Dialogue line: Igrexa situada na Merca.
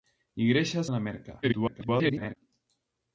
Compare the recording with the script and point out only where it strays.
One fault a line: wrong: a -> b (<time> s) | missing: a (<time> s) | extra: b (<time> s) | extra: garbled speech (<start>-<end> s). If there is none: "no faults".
missing: situada (0.8 s)
extra: garbled speech (1.4-2.3 s)